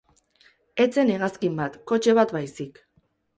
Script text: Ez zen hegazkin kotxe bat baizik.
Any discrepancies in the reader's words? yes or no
yes